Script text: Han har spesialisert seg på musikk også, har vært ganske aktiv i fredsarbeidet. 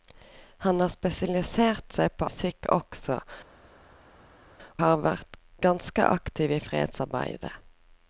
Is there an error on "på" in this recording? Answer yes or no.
no